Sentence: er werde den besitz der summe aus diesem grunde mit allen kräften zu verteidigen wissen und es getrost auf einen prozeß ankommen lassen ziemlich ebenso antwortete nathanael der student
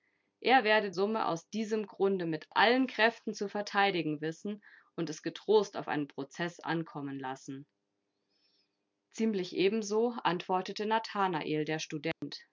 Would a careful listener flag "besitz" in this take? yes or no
yes